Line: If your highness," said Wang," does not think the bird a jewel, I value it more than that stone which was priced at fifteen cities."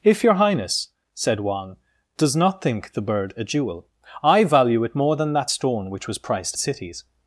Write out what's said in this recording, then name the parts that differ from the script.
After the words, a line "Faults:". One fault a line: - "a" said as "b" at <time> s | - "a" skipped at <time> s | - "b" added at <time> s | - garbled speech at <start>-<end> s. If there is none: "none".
If your highness," said Wang," does not think the bird a jewel, I value it more than that stone which was priced cities."
Faults:
- "at fifteen" skipped at 6.6 s